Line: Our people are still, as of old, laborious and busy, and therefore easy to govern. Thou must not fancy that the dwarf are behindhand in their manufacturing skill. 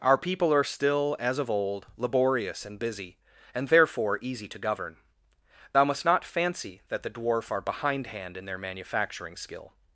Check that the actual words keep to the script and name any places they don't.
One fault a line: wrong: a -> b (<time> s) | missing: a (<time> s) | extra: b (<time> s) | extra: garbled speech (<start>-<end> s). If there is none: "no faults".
no faults